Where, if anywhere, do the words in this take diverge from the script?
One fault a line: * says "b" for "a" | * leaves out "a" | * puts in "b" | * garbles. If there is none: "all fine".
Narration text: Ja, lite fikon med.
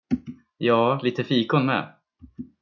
all fine